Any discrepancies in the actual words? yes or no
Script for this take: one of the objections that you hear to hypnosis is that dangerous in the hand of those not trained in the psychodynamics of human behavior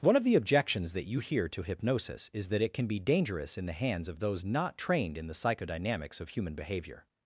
yes